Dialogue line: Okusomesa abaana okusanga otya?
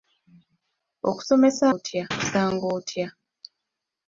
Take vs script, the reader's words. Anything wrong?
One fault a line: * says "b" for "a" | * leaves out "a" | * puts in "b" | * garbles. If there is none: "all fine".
* says "otya" for "abaana"